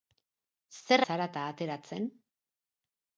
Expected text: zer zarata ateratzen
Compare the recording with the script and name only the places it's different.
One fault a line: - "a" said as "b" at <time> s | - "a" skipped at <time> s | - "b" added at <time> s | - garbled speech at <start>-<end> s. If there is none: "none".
none